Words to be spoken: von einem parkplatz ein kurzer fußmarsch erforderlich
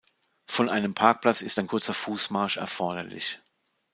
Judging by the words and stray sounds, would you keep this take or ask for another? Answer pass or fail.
fail